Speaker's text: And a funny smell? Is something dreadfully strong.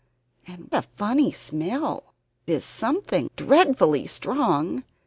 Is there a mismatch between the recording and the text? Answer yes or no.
no